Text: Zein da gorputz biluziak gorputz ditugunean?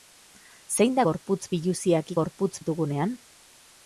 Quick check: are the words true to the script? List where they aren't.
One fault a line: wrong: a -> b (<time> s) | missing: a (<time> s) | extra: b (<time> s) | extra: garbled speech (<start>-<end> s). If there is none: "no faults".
no faults